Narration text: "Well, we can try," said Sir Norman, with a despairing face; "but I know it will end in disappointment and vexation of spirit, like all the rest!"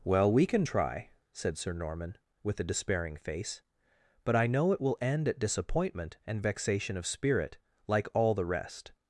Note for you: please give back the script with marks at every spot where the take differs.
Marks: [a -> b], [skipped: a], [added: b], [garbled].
"Well, we can try," said Sir Norman, with a despairing face; "but I know it will end [in -> at] disappointment and vexation of spirit, like all the rest!"